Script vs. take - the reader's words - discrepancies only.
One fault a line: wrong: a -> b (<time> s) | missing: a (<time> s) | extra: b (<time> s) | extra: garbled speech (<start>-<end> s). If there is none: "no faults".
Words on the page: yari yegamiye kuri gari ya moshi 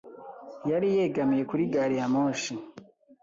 no faults